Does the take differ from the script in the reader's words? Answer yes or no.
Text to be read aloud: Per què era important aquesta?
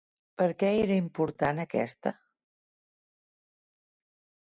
no